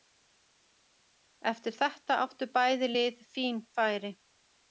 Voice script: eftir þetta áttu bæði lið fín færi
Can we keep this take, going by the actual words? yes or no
yes